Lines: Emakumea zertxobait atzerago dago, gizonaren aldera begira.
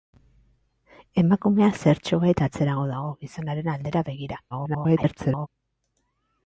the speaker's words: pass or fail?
fail